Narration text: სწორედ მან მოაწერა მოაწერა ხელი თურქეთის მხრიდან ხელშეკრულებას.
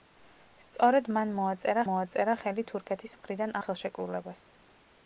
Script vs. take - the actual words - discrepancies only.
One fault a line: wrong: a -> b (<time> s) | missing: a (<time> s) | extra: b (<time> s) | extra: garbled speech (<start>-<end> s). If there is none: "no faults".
no faults